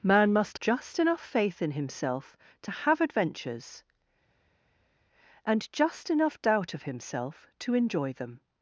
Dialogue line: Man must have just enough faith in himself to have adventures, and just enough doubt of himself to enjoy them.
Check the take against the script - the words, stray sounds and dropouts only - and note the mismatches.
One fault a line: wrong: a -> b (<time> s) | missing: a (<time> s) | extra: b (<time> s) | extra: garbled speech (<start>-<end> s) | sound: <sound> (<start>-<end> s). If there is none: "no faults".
missing: have (0.6 s)